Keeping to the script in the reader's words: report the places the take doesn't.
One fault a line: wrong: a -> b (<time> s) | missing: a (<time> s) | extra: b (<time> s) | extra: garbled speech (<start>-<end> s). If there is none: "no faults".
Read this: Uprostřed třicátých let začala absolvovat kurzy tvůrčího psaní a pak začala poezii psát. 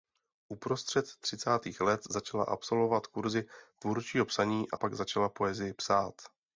no faults